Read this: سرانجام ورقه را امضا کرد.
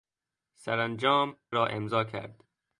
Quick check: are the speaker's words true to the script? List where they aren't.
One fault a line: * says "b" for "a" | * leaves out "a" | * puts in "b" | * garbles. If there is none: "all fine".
* leaves out "ورقه"